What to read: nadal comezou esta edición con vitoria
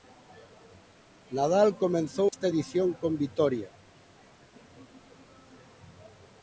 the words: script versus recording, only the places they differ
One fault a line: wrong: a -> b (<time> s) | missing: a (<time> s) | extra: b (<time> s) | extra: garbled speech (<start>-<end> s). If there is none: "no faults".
no faults